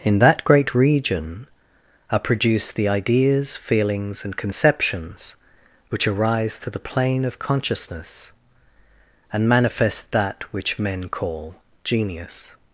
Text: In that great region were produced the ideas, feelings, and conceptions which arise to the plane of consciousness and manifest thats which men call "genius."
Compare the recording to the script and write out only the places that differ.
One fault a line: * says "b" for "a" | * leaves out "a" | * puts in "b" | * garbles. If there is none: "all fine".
* says "are" for "were"
* says "that" for "thats"